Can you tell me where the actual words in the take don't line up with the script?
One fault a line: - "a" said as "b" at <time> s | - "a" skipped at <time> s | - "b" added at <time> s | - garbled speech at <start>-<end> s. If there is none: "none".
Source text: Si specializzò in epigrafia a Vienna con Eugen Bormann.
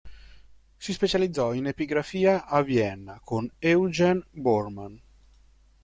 none